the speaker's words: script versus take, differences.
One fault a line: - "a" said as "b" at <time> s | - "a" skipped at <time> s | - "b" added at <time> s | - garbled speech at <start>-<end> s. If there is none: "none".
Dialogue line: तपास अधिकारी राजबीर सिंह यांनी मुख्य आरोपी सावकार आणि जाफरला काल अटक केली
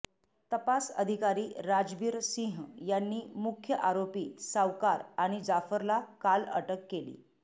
none